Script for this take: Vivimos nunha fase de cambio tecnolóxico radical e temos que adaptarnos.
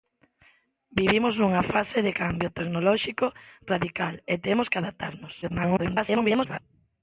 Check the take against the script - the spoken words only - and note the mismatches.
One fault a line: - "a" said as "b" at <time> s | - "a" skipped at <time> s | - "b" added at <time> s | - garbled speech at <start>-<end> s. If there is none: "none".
- garbled speech at 5.4-6.6 s